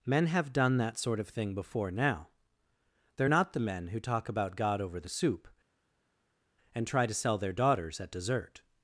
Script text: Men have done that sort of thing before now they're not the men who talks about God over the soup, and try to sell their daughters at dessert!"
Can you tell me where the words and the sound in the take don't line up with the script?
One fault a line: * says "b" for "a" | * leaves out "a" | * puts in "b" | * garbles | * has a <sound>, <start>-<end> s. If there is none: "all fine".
* says "talk" for "talks"